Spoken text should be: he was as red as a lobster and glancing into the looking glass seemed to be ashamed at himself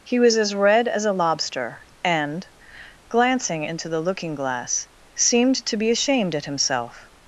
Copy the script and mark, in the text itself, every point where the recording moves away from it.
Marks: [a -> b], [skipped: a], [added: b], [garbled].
he was as red as a lobster and glancing into the looking glass seemed to be ashamed at himself